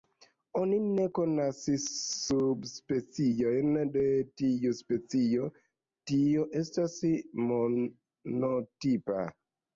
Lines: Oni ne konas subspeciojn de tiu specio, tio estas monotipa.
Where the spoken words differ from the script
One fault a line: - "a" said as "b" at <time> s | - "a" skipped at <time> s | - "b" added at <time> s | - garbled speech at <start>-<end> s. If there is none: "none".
none